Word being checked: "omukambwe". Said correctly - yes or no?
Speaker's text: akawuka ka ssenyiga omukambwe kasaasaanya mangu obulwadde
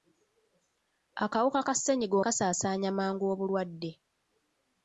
no